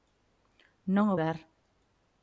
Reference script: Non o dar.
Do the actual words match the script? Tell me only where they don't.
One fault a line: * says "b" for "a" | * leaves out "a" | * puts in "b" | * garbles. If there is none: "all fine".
all fine